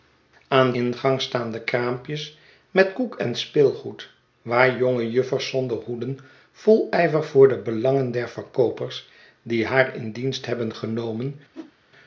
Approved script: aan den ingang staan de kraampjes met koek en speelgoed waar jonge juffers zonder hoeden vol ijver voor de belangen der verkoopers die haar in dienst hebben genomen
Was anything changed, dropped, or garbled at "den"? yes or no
yes